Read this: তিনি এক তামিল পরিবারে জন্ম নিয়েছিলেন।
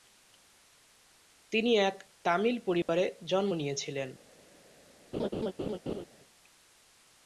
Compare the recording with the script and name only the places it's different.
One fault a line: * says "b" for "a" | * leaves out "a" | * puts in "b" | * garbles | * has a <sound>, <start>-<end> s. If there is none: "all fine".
* has a dropout, 2.8-2.9 s
* has a laugh, 5.1-6.0 s